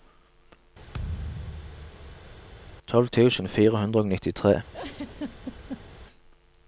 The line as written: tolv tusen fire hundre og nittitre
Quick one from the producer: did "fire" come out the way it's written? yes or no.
yes